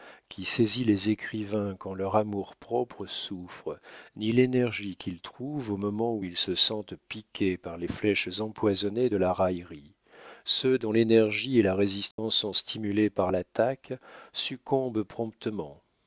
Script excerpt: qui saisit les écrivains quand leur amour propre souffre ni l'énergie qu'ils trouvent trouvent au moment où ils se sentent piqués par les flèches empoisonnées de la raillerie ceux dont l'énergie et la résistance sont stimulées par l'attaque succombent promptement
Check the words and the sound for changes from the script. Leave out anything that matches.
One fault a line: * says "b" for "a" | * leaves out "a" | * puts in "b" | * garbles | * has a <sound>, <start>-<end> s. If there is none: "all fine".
* leaves out "trouvent"
* has a dropout, 12.1-12.2 s